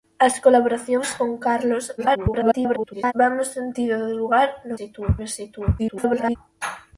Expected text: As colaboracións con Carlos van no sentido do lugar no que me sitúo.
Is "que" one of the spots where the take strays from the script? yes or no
yes